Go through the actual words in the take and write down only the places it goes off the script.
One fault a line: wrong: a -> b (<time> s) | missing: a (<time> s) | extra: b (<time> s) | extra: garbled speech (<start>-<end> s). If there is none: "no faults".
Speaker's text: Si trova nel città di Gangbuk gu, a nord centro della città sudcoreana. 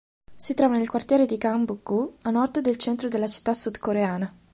wrong: città -> quartiere (0.9 s)
extra: del (2.6 s)